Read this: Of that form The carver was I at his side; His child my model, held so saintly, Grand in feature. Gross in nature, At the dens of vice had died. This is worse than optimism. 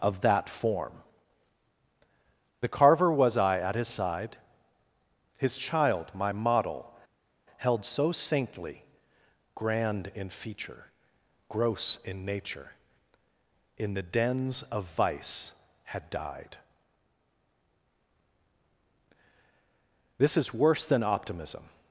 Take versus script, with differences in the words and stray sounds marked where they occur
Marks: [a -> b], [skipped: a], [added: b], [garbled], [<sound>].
Of that form The carver was I at his side; His child my model, held so saintly, Grand in feature. Gross in nature, [At -> In] the dens of vice had died. This is worse than optimism.